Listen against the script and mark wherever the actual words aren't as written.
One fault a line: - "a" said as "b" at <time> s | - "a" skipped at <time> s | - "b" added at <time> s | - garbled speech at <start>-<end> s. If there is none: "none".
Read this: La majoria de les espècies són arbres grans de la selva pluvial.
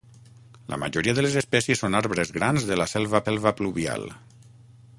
- "selva" added at 3.2 s